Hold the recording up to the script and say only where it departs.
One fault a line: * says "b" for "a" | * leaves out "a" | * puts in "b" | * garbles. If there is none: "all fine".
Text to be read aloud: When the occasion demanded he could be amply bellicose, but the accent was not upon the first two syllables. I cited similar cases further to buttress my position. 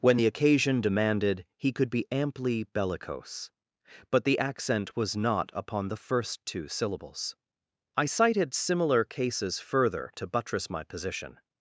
all fine